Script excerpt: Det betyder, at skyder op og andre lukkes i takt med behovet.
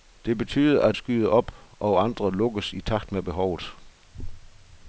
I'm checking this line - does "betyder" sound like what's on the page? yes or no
yes